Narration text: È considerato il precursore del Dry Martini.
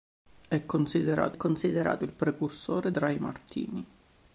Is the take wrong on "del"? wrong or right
wrong